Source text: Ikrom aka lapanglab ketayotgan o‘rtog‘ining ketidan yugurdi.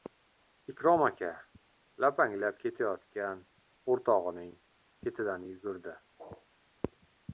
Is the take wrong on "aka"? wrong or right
right